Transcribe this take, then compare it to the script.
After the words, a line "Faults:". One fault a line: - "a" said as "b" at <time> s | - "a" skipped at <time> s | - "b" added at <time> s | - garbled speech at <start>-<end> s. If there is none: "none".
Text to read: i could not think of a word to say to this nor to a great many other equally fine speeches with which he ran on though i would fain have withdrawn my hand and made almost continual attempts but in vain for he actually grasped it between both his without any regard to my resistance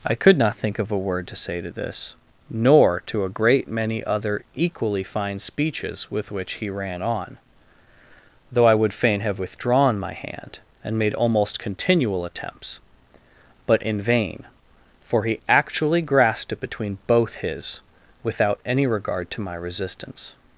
i could not think of a word to say to this nor to a great many other equally fine speeches with which he ran on though i would fain have withdrawn my hand and made almost continual attempts but in vain for he actually grasped it between both his without any regard to my resistance
Faults:
none